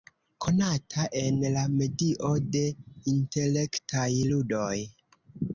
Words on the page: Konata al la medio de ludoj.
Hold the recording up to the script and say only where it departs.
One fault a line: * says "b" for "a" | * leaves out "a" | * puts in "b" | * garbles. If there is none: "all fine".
* says "en" for "al"
* puts in "intelektaj"